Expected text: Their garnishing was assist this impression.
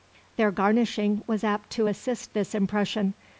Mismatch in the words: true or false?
true